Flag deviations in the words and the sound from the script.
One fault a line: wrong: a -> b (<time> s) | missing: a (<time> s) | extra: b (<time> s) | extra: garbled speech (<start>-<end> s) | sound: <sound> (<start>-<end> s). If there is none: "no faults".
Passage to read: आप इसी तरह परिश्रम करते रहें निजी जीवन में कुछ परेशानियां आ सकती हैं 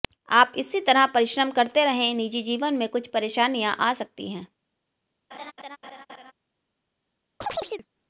sound: laugh (5.3-6.3 s)
sound: chirp (7.4-7.9 s)